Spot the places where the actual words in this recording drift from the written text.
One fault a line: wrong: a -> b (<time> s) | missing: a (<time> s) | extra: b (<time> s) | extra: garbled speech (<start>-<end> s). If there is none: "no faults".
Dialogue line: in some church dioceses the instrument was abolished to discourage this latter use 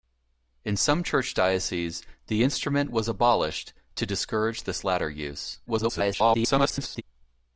extra: garbled speech (5.7-7.0 s)